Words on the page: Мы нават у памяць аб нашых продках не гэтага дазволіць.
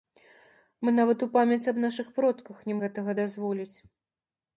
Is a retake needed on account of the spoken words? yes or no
no